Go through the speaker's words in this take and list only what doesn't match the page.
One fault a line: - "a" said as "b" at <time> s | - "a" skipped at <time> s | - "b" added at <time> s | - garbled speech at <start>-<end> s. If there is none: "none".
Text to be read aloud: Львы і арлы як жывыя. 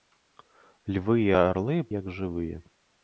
none